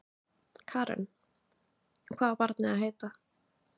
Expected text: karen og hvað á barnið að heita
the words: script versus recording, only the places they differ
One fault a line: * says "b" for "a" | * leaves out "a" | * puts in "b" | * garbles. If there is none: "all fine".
all fine